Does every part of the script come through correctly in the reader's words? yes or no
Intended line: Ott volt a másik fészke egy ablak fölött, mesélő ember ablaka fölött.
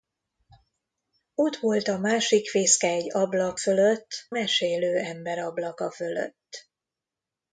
yes